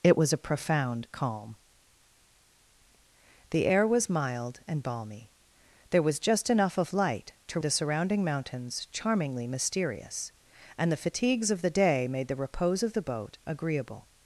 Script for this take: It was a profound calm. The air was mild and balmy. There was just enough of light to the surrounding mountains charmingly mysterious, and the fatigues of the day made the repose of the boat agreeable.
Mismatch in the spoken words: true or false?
false